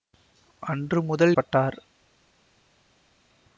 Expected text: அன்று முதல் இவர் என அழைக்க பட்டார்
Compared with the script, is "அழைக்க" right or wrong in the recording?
wrong